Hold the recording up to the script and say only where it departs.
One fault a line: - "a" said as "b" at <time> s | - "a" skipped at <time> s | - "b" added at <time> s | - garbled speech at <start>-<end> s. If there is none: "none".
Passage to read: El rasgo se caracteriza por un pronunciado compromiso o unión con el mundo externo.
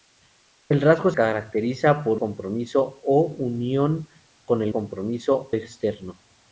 - "se" skipped at 1.1 s
- "un pronunciado" skipped at 2.2 s
- "mundo" said as "compromiso" at 4.7 s